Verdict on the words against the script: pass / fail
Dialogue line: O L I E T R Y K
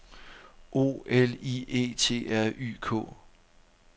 pass